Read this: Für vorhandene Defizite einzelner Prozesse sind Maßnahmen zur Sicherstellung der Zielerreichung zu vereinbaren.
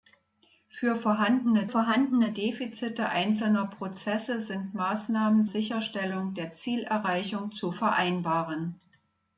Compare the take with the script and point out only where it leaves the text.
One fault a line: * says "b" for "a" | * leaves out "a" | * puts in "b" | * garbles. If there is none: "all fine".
* puts in "vorhandene"
* leaves out "zur"